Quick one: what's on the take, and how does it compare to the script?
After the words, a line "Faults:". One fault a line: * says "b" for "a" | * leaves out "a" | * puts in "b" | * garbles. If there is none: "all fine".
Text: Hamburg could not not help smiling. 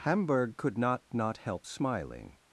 Hamburg could not not help smiling.
Faults:
all fine